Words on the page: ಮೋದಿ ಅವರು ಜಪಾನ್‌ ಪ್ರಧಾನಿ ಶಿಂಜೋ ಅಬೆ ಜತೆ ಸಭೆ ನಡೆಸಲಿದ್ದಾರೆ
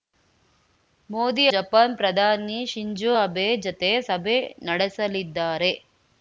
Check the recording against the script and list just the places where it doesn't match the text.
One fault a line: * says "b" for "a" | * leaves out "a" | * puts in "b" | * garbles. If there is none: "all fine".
* leaves out "ಅವರು"